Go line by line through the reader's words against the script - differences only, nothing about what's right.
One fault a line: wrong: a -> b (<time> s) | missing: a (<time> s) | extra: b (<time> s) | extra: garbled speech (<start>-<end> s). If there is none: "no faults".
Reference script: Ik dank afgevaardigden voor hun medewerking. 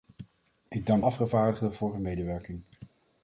no faults